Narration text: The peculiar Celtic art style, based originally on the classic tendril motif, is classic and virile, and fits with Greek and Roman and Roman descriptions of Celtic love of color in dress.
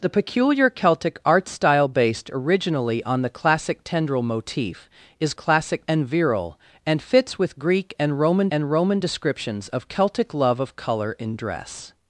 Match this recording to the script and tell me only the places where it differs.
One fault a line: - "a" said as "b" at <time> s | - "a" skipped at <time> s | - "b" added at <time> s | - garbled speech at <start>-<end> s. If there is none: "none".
none